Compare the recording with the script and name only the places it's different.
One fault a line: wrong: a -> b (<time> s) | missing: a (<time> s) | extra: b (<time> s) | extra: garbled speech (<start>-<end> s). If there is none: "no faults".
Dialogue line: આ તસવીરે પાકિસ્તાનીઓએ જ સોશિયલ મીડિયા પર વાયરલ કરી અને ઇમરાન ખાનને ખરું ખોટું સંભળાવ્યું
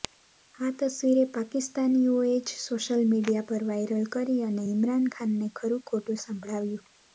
no faults